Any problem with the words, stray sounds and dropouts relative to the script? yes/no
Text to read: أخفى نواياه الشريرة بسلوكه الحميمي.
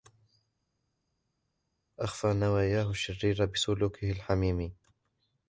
no